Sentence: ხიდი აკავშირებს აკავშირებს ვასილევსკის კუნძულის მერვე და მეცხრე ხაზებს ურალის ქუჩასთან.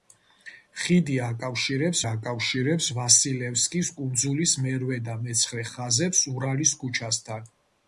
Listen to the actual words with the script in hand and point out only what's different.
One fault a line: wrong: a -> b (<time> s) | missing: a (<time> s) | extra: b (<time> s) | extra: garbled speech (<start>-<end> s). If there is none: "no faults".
no faults